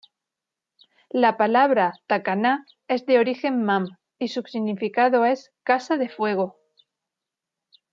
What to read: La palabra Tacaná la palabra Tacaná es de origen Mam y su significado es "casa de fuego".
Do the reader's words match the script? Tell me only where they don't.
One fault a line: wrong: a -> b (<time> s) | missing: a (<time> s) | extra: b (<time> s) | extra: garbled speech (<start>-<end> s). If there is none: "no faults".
missing: la palabra Tacaná (2.6 s)